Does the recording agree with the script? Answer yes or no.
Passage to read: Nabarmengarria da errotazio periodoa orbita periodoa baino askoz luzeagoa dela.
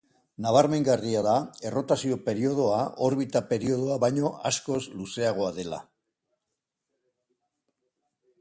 yes